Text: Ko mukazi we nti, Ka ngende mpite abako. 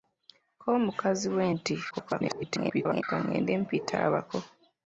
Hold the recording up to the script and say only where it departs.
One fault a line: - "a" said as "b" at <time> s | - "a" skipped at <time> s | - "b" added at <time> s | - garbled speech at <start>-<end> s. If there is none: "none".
- garbled speech at 1.9-3.0 s